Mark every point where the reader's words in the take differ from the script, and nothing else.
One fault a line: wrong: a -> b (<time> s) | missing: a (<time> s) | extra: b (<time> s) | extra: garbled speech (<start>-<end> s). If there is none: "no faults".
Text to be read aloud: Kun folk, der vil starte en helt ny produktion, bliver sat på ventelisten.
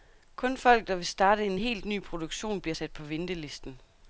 no faults